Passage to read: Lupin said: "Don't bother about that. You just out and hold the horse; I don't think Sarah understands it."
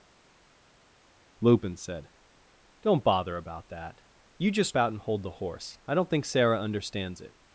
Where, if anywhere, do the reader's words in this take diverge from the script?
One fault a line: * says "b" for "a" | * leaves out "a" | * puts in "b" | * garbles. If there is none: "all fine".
all fine